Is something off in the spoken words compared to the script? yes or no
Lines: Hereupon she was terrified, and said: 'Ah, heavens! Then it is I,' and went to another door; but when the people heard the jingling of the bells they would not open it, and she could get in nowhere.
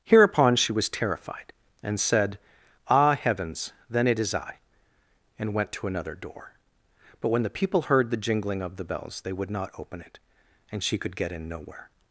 no